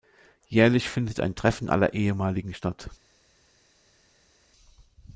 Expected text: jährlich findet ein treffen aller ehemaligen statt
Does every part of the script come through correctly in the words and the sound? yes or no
yes